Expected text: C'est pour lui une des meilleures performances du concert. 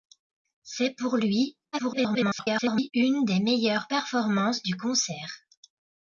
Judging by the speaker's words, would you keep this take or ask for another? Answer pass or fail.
fail